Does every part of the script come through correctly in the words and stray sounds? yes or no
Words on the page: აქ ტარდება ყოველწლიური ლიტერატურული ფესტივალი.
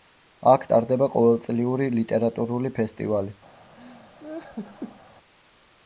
no